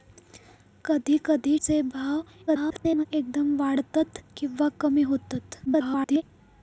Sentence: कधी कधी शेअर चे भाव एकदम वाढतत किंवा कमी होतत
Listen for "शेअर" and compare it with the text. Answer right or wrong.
wrong